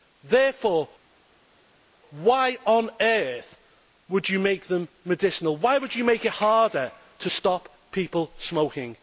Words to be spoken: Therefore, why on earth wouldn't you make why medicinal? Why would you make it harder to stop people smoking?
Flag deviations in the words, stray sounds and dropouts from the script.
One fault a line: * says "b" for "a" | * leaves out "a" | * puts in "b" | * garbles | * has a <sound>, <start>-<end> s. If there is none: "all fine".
* says "would" for "wouldn't"
* says "them" for "why"